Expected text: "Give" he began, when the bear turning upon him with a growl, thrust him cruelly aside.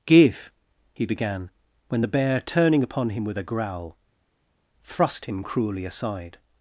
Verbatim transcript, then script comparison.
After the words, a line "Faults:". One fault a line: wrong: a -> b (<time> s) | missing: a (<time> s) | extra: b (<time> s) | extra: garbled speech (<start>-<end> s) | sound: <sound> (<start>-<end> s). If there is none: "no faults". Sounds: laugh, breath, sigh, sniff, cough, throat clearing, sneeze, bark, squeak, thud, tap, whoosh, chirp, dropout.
"Give" he began, when the bear turning upon him with a growl, thrust him cruelly aside.
Faults:
no faults